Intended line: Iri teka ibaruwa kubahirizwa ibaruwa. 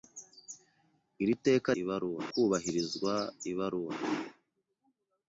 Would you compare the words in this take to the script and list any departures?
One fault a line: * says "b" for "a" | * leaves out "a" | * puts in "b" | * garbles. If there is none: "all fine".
all fine